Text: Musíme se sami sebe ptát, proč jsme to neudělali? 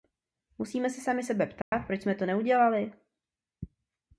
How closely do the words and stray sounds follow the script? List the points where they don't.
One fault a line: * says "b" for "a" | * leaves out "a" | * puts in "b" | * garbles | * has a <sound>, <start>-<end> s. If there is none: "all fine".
* has a dropout, 1.6-1.7 s